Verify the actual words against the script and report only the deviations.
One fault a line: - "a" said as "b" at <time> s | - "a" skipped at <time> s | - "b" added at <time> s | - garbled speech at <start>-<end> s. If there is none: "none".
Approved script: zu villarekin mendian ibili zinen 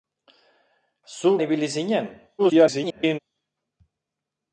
- "villarekin mendian" skipped at 1.4 s
- garbled speech at 2.4-3.2 s